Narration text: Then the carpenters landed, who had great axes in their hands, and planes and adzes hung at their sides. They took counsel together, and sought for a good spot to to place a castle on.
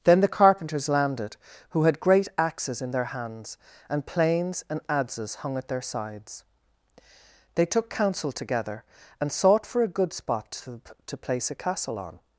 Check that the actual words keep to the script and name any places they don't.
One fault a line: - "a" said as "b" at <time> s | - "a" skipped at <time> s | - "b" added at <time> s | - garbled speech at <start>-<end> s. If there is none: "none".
none